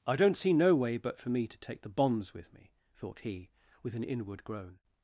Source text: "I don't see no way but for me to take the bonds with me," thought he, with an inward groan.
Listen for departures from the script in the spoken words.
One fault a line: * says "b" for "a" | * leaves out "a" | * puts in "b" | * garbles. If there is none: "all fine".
all fine